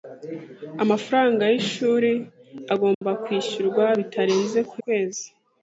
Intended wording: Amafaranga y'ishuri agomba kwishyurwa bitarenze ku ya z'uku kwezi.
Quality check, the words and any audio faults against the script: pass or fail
fail